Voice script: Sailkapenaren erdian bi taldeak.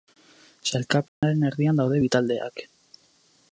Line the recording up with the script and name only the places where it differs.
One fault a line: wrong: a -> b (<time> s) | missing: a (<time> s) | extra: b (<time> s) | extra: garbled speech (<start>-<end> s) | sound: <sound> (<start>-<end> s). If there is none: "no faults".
sound: dropout (1.1-1.2 s)
extra: daude (1.8 s)